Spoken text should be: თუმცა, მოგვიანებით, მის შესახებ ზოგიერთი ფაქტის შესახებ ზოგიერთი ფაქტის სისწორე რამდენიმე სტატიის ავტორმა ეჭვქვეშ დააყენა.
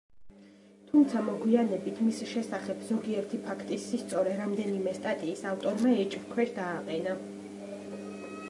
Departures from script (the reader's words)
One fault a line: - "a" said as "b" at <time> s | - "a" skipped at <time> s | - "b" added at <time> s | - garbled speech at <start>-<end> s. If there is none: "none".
- "შესახებ ზოგიერთი ფაქტის" skipped at 3.9 s